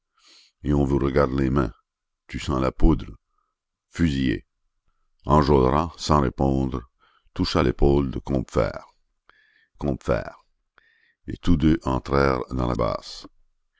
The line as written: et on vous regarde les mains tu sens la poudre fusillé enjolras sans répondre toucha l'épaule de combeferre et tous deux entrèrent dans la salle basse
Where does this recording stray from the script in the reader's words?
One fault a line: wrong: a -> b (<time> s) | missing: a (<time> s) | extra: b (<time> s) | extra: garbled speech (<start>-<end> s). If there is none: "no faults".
extra: combeferre (9.7 s)
missing: salle (12.7 s)